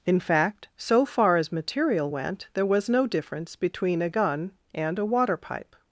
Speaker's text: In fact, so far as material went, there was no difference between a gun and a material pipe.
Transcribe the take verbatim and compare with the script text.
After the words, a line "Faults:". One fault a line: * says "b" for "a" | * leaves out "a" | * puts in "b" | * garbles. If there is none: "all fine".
In fact, so far as material went, there was no difference between a gun and a water pipe.
Faults:
* says "water" for "material"